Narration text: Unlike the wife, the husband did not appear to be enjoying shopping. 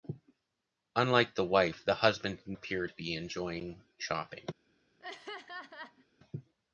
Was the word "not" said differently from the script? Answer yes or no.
yes